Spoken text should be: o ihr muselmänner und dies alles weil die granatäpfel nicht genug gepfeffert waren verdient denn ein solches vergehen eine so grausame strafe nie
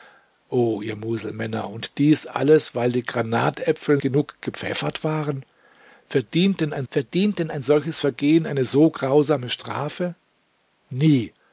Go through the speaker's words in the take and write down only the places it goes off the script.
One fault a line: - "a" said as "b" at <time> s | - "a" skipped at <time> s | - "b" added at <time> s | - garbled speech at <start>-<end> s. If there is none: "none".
- "nicht" skipped at 4.0 s
- "verdient denn ein" added at 6.9 s